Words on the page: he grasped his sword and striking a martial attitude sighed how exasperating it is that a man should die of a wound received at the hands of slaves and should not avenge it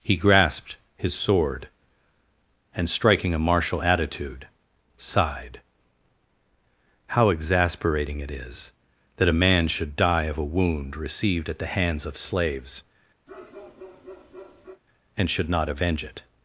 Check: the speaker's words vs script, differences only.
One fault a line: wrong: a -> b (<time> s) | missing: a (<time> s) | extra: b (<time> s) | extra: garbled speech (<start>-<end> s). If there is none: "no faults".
no faults